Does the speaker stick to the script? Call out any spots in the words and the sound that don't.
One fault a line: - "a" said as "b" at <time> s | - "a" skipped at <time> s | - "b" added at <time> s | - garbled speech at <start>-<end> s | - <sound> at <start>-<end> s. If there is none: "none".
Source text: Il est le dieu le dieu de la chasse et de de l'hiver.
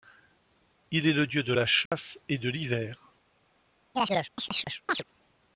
- "le dieu" skipped at 1.4 s
- dropout at 1.9-1.9 s
- "de" skipped at 2.5 s
- chirp at 3.9-5.0 s